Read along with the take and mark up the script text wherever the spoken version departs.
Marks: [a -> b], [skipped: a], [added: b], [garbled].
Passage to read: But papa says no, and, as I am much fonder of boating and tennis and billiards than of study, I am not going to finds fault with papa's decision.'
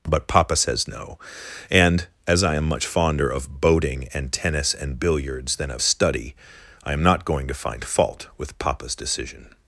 But papa says no, and, as I am much fonder of boating and tennis and billiards than of study, I am not going to [finds -> find] fault with papa's decision.'